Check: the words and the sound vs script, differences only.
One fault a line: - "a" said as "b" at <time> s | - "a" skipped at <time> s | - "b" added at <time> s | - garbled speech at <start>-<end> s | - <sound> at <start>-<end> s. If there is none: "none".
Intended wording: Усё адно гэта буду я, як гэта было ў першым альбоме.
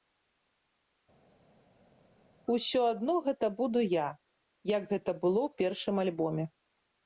none